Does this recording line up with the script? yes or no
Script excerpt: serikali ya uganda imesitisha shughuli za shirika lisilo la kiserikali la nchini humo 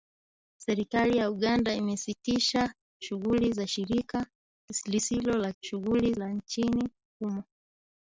no